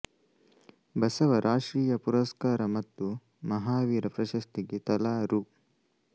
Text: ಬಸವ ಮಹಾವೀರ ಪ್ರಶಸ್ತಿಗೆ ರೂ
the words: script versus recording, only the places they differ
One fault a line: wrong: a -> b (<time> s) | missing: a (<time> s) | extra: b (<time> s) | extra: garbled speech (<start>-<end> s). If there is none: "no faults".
extra: ರಾಷ್ಟ್ರೀಯ ಪುರಸ್ಕಾರ ಮತ್ತು (1.4 s)
extra: ತಲಾ (4.9 s)